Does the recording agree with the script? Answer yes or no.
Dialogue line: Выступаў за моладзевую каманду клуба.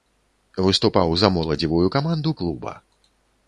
yes